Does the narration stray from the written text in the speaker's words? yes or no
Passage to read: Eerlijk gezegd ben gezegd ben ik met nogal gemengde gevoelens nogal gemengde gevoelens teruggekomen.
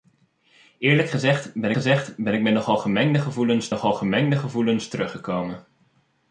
no